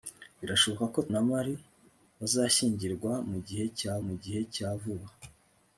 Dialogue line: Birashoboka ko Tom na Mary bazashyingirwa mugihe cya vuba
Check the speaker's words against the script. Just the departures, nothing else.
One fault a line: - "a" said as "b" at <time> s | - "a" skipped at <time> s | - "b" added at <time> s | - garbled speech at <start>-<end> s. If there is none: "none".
- "Tom" skipped at 1.0 s
- "mugihe cya" added at 4.0 s